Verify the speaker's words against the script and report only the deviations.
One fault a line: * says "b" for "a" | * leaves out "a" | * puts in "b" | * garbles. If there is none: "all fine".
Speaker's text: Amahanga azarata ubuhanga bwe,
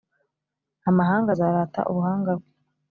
all fine